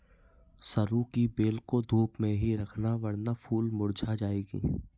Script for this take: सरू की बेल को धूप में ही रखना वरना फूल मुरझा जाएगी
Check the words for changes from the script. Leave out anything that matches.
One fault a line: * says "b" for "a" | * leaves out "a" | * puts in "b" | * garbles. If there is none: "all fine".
all fine